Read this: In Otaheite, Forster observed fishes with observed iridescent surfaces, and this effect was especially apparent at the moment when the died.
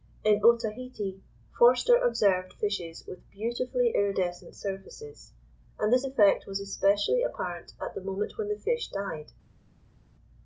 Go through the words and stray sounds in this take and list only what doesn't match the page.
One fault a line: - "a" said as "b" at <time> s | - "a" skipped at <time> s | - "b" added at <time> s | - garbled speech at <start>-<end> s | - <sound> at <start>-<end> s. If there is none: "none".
- "observed" said as "beautifully" at 3.3 s
- "fish" added at 8.6 s